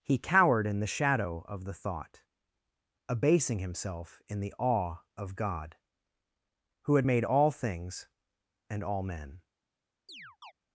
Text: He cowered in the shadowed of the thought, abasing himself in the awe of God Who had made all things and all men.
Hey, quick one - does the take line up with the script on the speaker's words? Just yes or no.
no